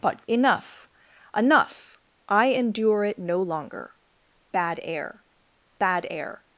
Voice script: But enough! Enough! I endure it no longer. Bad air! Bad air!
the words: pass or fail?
pass